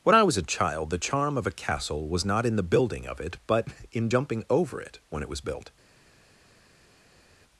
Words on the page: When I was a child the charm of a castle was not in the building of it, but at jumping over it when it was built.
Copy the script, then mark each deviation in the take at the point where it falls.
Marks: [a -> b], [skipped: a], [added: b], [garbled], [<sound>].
When I was a child the charm of a castle was not in the building of it, but [at -> in] jumping over it when it was built.